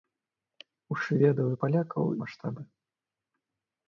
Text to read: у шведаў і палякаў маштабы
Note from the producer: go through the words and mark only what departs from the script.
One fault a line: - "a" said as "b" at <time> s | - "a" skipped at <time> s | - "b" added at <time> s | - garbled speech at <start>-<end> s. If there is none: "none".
none